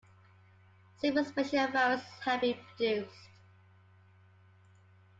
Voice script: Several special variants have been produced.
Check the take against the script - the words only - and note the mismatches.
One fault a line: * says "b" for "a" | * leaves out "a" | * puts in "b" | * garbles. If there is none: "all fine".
all fine